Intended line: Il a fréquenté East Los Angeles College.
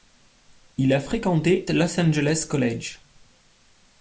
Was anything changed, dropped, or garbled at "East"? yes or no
yes